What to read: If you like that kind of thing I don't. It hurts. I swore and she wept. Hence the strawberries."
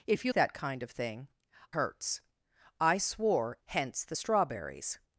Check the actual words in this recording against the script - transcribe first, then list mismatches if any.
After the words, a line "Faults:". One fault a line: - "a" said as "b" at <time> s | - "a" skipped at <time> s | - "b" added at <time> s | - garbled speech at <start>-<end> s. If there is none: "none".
If you that kind of thing hurts. I swore. Hence the strawberries."
Faults:
- "like" skipped at 0.3 s
- "I don't It" skipped at 1.3 s
- "and she wept" skipped at 3.6 s